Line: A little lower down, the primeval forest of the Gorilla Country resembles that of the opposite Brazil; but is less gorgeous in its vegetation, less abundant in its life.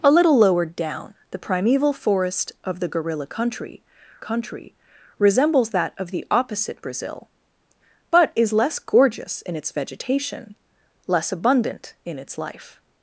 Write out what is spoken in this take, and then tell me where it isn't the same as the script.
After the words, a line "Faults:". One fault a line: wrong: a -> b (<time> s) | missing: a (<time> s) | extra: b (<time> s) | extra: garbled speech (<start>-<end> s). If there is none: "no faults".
A little lower down, the primeval forest of the Gorilla Country Country resembles that of the opposite Brazil; but is less gorgeous in its vegetation, less abundant in its life.
Faults:
extra: Country (4.2 s)